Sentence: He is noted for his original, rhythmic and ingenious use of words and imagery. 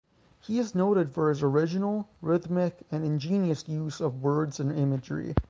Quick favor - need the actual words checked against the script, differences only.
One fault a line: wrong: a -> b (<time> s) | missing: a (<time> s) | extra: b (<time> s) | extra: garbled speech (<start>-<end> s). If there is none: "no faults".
no faults